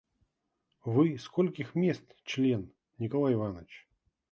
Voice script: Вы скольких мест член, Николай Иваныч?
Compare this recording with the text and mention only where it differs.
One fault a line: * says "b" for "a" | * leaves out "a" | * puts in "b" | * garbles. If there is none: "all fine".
all fine